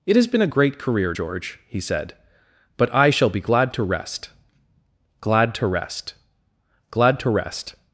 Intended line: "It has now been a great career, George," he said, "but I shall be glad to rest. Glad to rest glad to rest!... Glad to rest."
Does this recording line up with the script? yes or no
no